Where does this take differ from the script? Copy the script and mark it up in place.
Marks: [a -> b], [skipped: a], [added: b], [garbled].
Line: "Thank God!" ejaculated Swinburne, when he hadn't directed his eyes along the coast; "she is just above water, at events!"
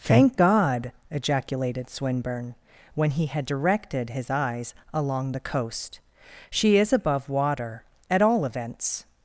"Thank God!" ejaculated Swinburne, when he [hadn't -> had] directed his eyes along the coast; "she is [skipped: just] above water, at [added: all] events!"